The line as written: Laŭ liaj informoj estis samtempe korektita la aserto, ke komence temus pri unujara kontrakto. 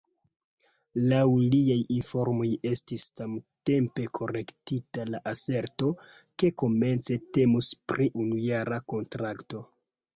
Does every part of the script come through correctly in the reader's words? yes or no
yes